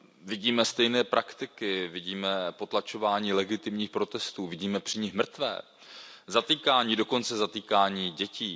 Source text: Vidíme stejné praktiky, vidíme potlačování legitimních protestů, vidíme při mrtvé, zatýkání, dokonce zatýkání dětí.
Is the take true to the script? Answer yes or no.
no